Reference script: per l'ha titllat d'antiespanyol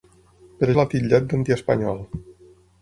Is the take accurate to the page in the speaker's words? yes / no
yes